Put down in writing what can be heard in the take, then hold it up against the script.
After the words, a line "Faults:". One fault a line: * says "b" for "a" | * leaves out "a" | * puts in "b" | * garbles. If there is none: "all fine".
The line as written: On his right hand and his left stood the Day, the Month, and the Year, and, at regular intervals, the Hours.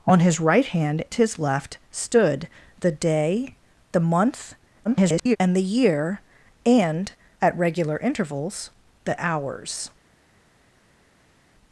On his right hand his left stood the Day, the Month, [garbled] and the Year, and, at regular intervals, the Hours.
Faults:
* leaves out "and"
* garbles